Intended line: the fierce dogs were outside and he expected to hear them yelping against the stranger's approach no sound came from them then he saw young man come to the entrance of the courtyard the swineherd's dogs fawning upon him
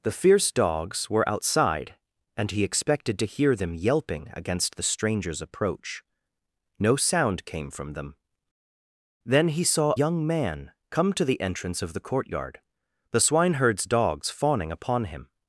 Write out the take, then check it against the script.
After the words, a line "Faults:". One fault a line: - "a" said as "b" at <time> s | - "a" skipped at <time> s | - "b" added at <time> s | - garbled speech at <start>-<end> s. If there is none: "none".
the fierce dogs were outside and he expected to hear them yelping against the stranger's approach no sound came from them then he saw young man come to the entrance of the courtyard the swineherd's dogs fawning upon him
Faults:
none